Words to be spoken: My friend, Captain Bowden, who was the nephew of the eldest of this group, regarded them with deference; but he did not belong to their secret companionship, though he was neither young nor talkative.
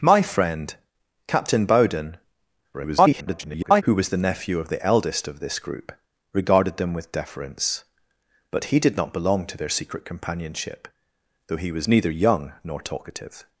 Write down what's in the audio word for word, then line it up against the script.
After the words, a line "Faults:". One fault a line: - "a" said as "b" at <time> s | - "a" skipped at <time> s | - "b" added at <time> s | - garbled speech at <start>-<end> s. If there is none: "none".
My friend, Captain Bowden, [garbled] who was the nephew of the eldest of this group, regarded them with deference; but he did not belong to their secret companionship, though he was neither young nor talkative.
Faults:
- garbled speech at 2.7-3.8 s